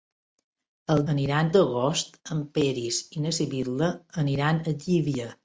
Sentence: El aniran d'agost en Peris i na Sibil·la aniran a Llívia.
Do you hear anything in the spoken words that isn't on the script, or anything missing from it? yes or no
no